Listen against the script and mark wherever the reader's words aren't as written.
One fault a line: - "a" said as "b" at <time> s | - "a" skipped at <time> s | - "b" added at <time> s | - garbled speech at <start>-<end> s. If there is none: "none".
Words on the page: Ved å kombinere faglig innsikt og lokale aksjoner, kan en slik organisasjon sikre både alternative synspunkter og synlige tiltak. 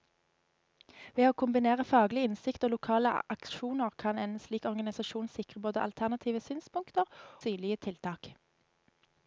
- "og" skipped at 7.1 s